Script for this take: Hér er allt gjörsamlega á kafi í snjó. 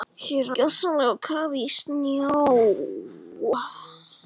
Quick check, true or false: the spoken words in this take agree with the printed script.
false